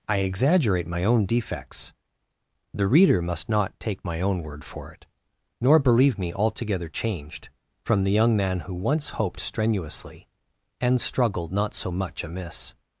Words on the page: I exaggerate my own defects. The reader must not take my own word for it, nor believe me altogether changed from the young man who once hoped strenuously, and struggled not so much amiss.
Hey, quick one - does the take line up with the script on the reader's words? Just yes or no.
yes